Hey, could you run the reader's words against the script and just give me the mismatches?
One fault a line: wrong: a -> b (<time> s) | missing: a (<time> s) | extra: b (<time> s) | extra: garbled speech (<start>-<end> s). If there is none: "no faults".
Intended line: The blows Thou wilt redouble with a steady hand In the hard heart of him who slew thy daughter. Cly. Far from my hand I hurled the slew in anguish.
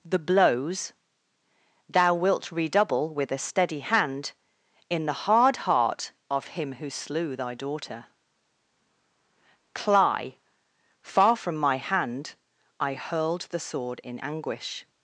wrong: slew -> sword (13.6 s)